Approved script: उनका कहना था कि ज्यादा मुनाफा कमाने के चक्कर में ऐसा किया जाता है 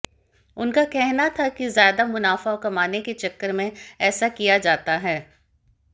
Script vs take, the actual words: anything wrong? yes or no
no